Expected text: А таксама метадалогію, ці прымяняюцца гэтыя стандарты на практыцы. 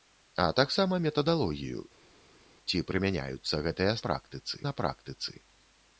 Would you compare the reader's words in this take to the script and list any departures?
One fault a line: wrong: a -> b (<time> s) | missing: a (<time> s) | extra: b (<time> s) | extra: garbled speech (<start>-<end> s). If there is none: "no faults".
wrong: стандарты -> практыцы (4.1 s)